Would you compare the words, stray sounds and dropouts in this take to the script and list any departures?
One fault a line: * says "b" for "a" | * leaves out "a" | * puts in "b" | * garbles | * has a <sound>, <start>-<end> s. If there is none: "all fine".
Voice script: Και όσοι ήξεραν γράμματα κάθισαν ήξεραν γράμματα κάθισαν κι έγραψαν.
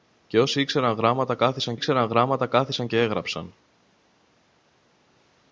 all fine